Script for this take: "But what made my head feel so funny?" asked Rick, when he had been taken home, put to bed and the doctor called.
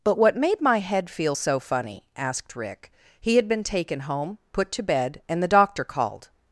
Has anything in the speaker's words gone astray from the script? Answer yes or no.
yes